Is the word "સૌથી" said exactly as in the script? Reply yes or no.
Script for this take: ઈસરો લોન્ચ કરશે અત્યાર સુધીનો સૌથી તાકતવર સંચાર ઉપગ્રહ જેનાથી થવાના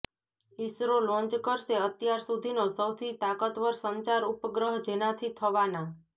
yes